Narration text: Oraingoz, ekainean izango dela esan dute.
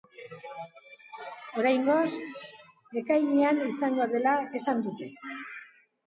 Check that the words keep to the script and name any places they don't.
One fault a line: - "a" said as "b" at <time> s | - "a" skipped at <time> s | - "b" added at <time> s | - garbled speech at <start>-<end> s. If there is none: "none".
none